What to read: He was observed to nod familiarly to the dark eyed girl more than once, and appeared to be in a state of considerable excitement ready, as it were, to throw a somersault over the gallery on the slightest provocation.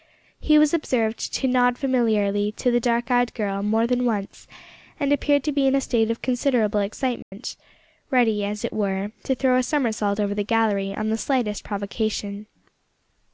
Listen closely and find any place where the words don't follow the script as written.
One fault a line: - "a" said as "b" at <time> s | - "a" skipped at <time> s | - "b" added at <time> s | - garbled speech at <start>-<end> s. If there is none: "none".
none